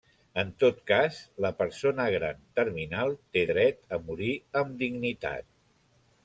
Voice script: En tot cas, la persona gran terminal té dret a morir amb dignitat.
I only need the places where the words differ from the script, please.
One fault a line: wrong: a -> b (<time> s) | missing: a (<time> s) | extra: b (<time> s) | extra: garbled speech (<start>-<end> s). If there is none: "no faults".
no faults